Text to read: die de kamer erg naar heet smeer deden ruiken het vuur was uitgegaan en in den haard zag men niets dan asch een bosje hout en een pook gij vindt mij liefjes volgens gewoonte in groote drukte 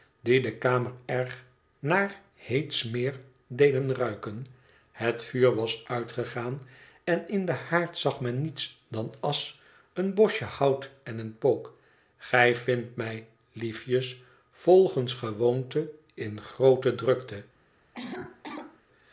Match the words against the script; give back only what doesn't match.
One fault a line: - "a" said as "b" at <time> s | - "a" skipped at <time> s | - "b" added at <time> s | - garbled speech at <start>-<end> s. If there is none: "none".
none